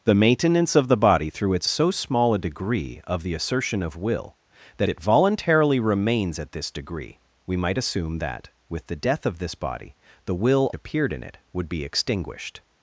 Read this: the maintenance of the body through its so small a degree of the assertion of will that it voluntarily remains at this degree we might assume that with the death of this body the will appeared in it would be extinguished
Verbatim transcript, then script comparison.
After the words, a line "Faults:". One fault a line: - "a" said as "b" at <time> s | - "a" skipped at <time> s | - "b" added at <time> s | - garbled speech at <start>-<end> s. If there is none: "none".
the maintenance of the body through its so small a degree of the assertion of will that it voluntarily remains at this degree we might assume that with the death of this body the will appeared in it would be extinguished
Faults:
none